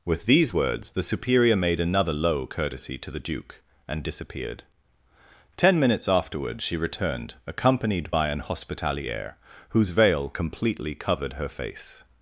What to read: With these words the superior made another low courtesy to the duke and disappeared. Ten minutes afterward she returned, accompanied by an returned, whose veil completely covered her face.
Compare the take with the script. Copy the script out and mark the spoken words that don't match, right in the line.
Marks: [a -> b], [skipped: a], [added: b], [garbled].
With these words the superior made another low courtesy to the duke and disappeared. Ten minutes afterward she returned, accompanied by an [returned, -> hospitaliere] whose veil completely covered her face.